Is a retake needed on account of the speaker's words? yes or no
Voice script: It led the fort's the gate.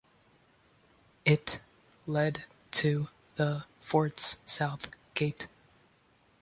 yes